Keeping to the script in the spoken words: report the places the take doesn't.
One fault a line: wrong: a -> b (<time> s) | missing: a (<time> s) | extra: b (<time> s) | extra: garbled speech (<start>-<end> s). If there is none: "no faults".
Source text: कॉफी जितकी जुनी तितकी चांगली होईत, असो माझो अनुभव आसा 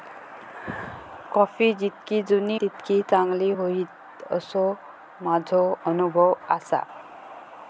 no faults